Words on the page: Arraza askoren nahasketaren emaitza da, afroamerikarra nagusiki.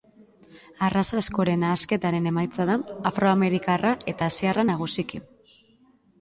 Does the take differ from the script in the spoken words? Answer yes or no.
yes